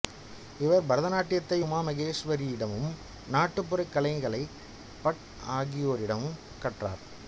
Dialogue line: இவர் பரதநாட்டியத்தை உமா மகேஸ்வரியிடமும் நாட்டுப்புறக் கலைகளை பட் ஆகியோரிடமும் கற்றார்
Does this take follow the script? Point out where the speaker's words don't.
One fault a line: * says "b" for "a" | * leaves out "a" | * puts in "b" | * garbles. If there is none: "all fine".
all fine